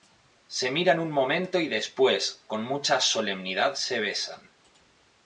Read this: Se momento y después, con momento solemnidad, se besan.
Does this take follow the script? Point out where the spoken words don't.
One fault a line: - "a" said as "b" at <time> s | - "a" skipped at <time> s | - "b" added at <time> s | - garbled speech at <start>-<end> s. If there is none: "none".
- "miran un" added at 0.7 s
- "momento" said as "mucha" at 2.6 s